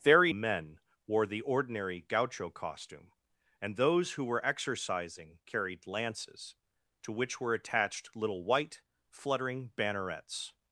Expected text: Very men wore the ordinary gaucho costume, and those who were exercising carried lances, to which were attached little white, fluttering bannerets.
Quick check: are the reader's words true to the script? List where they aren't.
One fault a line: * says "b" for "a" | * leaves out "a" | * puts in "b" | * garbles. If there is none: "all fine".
all fine